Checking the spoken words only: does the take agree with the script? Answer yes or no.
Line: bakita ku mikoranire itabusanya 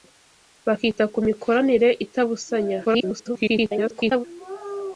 no